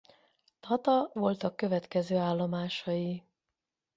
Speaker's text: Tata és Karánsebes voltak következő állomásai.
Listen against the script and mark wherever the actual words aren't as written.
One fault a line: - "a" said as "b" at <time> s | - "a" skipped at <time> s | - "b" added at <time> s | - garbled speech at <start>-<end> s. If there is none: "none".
- "és Karánsebes" skipped at 1.1 s